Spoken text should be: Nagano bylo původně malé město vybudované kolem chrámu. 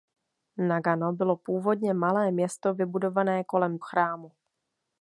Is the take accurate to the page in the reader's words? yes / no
yes